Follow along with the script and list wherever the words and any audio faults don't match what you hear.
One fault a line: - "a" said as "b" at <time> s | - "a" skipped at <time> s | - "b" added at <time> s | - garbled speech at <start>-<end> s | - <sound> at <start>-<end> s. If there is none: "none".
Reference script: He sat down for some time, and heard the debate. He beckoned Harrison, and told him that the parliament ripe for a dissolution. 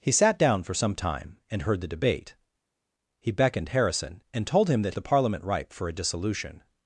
none